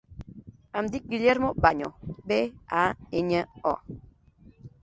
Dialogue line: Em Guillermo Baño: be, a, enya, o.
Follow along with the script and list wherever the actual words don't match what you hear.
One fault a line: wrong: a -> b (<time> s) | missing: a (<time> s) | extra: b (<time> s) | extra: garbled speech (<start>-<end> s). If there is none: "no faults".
extra: dic (0.9 s)